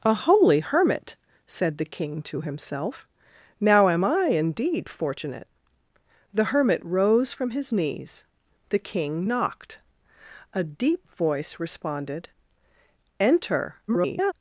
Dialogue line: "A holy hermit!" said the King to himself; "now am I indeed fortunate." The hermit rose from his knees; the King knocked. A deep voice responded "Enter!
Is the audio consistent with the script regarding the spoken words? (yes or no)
no